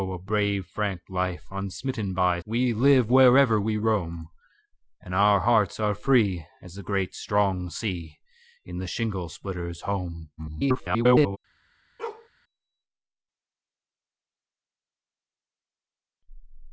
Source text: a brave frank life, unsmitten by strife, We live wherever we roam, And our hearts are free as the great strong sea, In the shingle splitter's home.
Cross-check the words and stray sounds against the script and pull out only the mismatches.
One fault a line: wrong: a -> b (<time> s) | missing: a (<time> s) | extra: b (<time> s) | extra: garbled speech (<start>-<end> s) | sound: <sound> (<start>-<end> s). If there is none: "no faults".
missing: strife (2.4 s)
extra: garbled speech (10.4-11.4 s)
sound: bark (12.0-12.3 s)